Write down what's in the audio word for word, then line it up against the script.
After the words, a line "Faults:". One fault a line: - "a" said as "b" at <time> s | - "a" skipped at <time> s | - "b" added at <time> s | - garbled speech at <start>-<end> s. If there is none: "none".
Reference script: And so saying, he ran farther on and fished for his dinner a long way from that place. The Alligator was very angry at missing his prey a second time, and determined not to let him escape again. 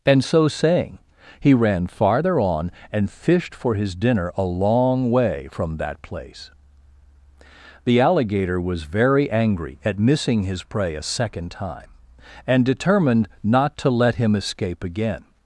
And so saying, he ran farther on and fished for his dinner a long way from that place. The Alligator was very angry at missing his prey a second time, and determined not to let him escape again.
Faults:
none